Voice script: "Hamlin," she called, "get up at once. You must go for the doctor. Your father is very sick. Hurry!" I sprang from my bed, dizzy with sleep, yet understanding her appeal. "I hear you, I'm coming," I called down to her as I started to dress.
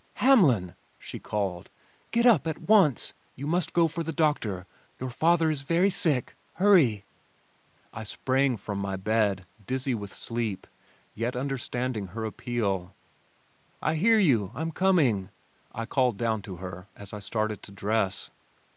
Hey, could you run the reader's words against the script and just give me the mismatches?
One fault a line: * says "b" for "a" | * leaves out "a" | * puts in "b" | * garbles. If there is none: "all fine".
all fine